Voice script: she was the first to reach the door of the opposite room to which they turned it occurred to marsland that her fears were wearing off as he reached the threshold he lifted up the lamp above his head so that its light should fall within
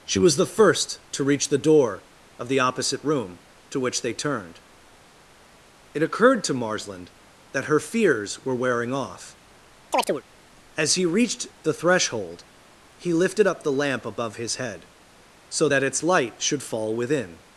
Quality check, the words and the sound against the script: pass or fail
fail